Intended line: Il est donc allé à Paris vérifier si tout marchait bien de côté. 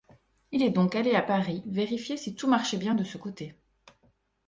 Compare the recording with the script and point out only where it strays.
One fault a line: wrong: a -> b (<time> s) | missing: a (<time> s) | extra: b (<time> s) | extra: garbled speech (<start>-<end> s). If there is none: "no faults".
extra: ce (3.0 s)